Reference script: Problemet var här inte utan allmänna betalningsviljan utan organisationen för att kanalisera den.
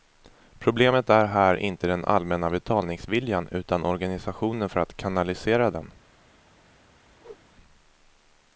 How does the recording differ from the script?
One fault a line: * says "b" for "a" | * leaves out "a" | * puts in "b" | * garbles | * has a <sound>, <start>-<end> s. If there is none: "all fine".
* says "är" for "var"
* says "den" for "utan"
* has a whoosh, 7.2-7.4 s